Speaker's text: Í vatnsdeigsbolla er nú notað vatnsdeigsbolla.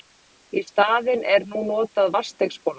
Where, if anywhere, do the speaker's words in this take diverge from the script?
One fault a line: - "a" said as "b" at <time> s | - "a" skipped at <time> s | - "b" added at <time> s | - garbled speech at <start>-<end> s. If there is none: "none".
- "vatnsdeigsbolla" said as "staðinn" at 0.7 s